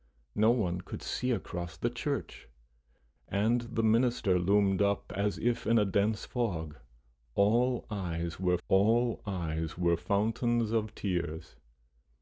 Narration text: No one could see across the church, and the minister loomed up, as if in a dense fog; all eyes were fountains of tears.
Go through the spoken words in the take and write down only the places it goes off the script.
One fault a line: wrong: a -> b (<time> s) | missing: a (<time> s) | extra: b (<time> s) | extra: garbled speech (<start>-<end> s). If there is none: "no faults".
extra: all eyes were (8.7 s)